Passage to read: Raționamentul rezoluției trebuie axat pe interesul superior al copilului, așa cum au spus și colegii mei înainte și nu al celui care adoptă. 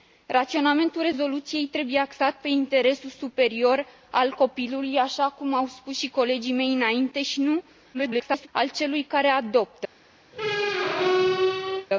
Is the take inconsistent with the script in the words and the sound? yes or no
yes